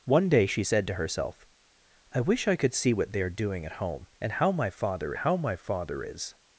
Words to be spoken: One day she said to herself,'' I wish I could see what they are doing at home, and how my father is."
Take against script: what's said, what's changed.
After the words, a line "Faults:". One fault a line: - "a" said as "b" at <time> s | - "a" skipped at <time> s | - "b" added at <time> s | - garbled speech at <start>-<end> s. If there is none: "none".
One day she said to herself,'' I wish I could see what they are doing at home, and how my father how my father is."
Faults:
- "how my father" added at 5.1 s